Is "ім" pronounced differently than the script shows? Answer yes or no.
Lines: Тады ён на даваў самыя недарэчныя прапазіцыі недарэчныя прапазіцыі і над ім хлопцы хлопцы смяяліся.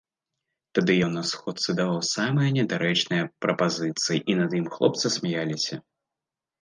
no